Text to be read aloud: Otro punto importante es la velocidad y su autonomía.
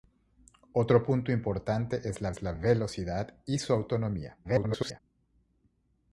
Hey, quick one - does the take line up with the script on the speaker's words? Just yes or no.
no